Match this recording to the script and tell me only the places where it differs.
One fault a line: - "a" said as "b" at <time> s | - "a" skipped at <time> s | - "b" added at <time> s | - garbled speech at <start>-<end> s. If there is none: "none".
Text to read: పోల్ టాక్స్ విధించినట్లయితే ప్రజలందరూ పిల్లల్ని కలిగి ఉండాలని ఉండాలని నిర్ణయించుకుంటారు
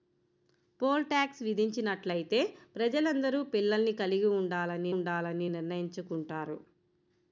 none